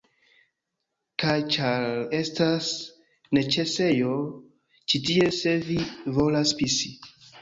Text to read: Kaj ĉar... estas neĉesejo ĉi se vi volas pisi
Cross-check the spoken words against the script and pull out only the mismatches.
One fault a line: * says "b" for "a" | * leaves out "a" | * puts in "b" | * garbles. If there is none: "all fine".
* puts in "tie"